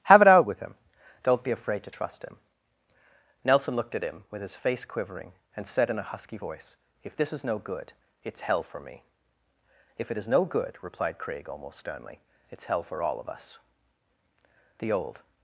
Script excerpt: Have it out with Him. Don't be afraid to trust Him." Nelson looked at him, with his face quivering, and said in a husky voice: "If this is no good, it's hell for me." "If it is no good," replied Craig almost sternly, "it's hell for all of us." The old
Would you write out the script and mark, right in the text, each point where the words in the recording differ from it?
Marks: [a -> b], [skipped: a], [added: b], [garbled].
Have it out with Him. Don't be afraid to trust Him." Nelson looked at him, with his face quivering, and said in a husky voice: "If this is no good, it's hell for me." "If it is no good," replied Craig almost sternly, "it's hell for all of us." The old